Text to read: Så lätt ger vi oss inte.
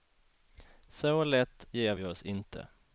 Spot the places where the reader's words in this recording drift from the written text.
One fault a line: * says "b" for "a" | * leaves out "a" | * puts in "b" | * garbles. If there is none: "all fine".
all fine